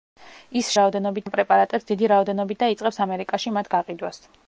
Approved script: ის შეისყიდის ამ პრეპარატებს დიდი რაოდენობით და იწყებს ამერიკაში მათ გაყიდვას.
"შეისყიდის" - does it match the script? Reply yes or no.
no